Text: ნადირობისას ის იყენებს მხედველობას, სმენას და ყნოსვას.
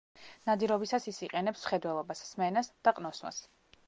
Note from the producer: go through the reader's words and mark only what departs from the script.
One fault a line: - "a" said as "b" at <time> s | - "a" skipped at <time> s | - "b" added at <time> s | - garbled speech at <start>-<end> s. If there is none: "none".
none